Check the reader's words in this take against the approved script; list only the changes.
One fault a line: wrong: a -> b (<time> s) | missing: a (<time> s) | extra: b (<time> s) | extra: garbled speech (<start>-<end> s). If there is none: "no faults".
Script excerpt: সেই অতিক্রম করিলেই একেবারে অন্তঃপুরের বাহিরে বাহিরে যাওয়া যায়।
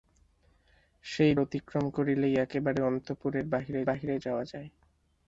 no faults